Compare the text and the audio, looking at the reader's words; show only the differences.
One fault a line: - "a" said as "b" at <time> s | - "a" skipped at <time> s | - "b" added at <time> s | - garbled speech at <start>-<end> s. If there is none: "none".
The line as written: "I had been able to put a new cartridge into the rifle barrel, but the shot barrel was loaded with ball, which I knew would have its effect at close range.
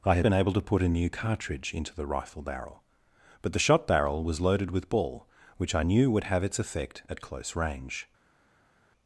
none